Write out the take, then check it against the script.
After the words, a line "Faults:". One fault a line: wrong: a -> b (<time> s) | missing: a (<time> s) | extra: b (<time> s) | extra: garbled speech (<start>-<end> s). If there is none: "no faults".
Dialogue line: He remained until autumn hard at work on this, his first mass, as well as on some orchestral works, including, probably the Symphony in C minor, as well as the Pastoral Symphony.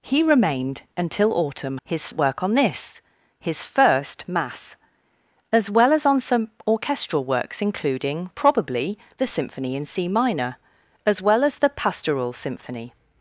He remained until autumn his at work on this, his first mass, as well as on some orchestral works, including, probably the Symphony in C minor, as well as the Pastoral Symphony.
Faults:
wrong: hard -> his (1.8 s)